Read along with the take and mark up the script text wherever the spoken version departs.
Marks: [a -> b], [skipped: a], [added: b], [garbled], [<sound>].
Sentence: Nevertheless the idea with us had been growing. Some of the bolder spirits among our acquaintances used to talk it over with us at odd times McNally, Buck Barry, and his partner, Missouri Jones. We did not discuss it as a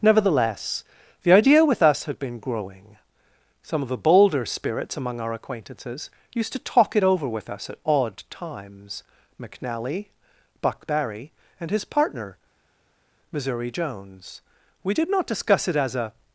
Nevertheless the idea with us had been growing. Some of the bolder spirits among our acquaintances used to talk it over with us at odd times McNally, Buck Barry, and his partner, Missouri Jones. We did not discuss it as a